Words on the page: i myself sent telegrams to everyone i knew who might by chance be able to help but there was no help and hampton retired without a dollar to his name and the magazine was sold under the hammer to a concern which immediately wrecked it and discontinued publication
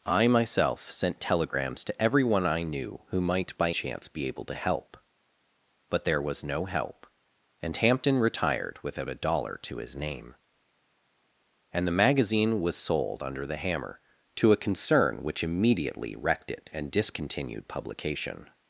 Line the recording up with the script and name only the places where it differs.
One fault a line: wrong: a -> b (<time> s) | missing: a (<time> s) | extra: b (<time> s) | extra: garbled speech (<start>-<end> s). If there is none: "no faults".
no faults